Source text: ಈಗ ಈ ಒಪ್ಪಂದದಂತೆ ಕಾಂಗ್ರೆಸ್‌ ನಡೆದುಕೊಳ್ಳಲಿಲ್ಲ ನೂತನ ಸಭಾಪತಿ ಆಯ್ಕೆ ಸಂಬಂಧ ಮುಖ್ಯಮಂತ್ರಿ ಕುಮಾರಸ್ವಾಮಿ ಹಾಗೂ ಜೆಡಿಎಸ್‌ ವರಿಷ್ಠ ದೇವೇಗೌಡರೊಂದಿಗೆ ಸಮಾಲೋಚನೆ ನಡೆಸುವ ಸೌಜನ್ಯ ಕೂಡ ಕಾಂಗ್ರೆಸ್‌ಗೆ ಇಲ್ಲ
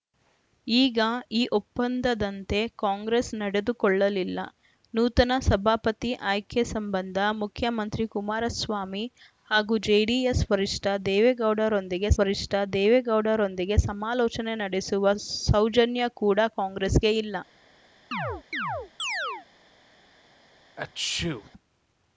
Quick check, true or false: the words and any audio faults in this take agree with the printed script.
false